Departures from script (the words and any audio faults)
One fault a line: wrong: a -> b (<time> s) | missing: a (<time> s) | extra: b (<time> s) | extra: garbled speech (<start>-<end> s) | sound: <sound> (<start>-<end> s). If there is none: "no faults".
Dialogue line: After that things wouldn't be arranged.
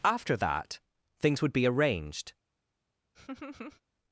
wrong: wouldn't -> would (1.4 s)
sound: laugh (3.1-3.8 s)